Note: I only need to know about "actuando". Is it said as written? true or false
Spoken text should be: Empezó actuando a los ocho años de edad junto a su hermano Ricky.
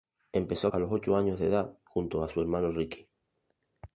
false